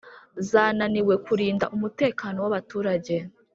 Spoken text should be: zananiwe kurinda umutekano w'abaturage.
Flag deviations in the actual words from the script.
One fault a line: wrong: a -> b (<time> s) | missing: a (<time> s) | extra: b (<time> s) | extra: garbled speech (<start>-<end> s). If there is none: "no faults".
no faults